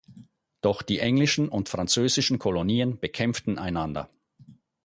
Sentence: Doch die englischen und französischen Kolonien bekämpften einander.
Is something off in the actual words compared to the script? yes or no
no